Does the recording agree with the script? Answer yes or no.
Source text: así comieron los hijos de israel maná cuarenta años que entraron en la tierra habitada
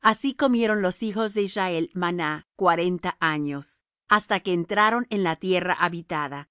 no